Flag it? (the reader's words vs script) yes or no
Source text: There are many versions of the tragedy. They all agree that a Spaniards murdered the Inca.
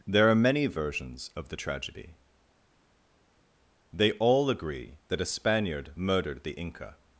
yes